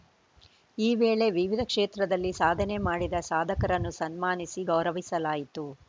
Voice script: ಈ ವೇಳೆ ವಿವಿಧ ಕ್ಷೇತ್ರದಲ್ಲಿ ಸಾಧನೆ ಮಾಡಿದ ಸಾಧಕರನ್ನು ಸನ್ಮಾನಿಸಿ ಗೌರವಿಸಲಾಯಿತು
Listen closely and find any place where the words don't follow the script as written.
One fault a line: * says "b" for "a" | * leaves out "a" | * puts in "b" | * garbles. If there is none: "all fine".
all fine